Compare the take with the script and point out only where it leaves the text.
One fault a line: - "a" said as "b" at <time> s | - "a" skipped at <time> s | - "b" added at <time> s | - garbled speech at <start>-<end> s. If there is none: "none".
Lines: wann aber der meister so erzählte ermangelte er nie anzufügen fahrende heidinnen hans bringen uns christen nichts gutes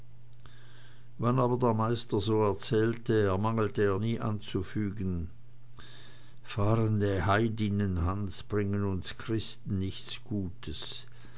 none